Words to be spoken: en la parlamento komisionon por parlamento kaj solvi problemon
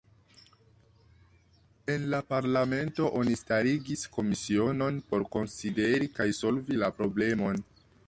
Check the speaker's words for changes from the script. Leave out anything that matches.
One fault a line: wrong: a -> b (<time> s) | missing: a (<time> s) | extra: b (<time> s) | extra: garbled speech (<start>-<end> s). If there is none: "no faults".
extra: oni starigis (3.2 s)
wrong: parlamento -> konsideri (5.4 s)
extra: la (6.8 s)